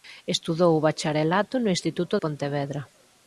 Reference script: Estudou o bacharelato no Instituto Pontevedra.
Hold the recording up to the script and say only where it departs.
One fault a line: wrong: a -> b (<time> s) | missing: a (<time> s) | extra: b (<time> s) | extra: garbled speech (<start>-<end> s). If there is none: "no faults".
no faults